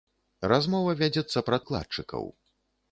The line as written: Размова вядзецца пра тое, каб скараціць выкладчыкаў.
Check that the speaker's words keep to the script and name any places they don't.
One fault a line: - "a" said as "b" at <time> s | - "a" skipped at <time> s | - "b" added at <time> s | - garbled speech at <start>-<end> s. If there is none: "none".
- "тое каб скараціць" skipped at 1.6 s